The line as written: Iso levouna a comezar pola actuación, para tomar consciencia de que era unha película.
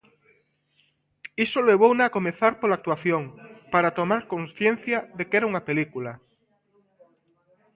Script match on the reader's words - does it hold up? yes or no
yes